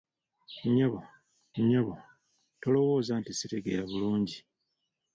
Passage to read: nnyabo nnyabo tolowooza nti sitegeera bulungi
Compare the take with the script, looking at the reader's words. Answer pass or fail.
pass